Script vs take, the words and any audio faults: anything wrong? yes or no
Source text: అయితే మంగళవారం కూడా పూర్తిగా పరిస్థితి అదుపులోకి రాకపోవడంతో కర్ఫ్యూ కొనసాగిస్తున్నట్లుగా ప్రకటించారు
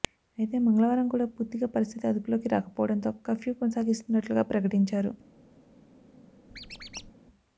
yes